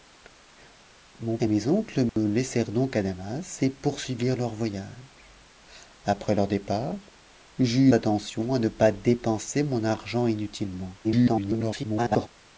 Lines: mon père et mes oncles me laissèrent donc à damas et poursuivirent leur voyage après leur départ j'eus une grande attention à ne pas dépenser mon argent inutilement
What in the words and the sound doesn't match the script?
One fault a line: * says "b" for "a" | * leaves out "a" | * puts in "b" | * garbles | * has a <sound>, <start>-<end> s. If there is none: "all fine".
* leaves out "père"
* has a dropout, 2.1-2.2 s
* leaves out "une grande"
* garbles